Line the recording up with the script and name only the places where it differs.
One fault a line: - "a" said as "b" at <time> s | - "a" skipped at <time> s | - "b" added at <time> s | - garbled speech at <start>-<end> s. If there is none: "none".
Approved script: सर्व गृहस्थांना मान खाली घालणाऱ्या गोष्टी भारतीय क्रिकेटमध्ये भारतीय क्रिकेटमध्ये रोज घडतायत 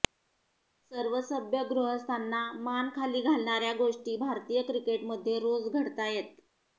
- "सभ्य" added at 1.2 s
- "भारतीय क्रिकेटमध्ये" skipped at 5.4 s